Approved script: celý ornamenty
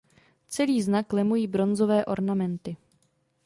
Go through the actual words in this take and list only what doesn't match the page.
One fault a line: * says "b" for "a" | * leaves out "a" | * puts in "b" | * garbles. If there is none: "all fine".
* puts in "znak lemují bronzové"